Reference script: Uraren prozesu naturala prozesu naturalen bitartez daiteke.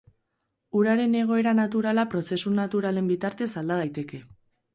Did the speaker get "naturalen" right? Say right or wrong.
right